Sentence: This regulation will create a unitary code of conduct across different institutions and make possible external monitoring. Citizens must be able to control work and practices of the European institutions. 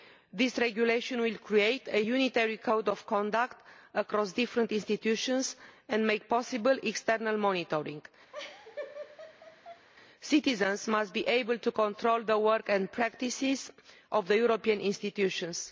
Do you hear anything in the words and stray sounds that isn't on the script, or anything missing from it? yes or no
yes